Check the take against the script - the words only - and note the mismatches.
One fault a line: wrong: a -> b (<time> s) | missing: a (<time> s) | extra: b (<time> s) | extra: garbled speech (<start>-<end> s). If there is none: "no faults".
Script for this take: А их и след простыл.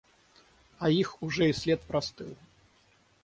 extra: уже (1.2 s)